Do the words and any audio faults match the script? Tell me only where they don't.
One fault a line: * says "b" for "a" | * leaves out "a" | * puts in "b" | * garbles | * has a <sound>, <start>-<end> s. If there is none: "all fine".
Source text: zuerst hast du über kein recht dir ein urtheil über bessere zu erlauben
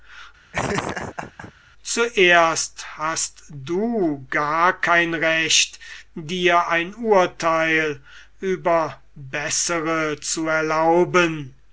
* has a laugh, 0.5-1.5 s
* says "gar" for "über"